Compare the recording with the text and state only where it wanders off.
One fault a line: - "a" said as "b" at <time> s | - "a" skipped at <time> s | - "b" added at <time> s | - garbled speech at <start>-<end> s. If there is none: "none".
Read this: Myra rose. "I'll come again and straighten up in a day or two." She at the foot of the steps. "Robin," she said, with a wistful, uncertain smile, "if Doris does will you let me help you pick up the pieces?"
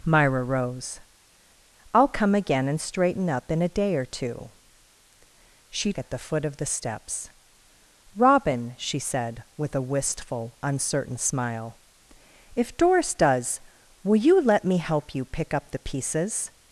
none